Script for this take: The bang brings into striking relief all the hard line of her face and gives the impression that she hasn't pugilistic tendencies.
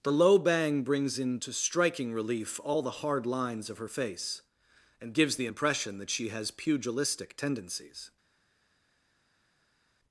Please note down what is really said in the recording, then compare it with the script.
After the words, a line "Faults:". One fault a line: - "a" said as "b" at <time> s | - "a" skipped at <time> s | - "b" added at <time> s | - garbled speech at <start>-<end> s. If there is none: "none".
The low bang brings into striking relief all the hard lines of her face and gives the impression that she has pugilistic tendencies.
Faults:
- "low" added at 0.1 s
- "line" said as "lines" at 3.3 s
- "hasn't" said as "has" at 6.3 s